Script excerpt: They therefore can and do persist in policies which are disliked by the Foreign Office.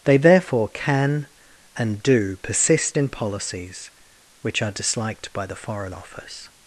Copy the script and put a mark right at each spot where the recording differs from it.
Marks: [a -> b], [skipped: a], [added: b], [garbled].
They therefore can and do persist in policies which are disliked by the Foreign Office.